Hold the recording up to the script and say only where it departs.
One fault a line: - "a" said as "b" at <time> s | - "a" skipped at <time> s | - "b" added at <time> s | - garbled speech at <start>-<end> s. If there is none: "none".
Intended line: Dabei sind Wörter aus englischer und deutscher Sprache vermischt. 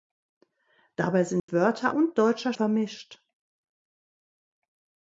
- "aus englischer" skipped at 1.9 s
- "Sprache" skipped at 2.5 s